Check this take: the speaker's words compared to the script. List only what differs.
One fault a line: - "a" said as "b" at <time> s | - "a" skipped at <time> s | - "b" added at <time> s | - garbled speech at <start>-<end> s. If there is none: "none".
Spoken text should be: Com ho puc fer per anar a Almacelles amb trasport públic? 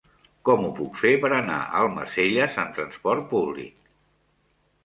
none